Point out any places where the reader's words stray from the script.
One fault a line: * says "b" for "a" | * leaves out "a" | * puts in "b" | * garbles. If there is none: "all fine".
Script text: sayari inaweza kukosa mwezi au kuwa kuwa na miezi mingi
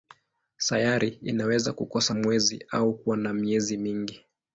* leaves out "kuwa"